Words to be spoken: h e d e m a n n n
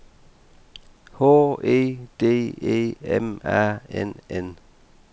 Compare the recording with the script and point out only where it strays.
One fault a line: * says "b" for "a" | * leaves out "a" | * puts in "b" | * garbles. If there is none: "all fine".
* leaves out "n"